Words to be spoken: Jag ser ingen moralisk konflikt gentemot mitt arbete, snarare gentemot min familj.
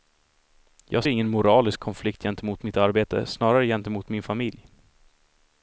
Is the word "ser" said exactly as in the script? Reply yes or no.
no